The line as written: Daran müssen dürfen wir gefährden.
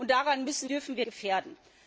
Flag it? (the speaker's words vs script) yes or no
no